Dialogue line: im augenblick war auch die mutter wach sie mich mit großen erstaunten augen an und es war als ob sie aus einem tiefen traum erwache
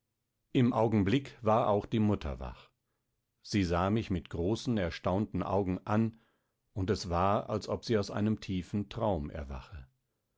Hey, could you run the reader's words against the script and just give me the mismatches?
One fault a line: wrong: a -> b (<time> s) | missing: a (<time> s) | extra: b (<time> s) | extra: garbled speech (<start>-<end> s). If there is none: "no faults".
extra: sah (3.6 s)